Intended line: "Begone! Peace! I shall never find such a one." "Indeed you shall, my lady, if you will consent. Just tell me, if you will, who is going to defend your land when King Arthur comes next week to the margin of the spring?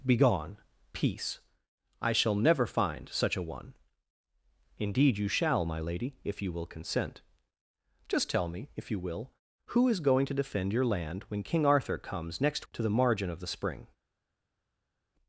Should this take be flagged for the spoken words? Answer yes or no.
yes